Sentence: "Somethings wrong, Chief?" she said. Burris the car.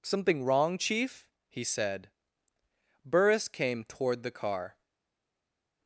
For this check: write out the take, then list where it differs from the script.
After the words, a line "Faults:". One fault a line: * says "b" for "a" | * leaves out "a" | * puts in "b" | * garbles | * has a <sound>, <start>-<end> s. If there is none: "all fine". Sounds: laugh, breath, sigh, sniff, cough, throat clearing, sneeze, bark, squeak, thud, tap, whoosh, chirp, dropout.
"Something wrong, Chief?" he said. Burris came toward the car.
Faults:
* says "Something" for "Somethings"
* says "he" for "she"
* puts in "came toward"